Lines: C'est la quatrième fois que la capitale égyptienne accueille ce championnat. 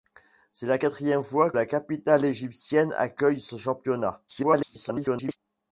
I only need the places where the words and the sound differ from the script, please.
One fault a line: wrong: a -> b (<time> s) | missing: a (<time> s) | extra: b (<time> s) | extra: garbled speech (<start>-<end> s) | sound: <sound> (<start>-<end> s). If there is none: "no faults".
missing: que (1.5 s)
extra: garbled speech (4.3-5.4 s)